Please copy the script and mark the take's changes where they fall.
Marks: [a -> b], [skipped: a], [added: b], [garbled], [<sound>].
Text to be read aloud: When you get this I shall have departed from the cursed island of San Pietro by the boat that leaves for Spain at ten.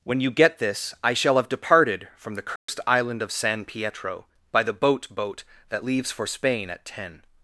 When you get this I shall have departed from the cursed [dropout] island of San Pietro by the boat [added: boat] that leaves for Spain at ten.